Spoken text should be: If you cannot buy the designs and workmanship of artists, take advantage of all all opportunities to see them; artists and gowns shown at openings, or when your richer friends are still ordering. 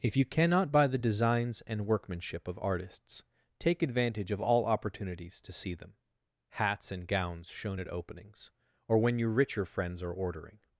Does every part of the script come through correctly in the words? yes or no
no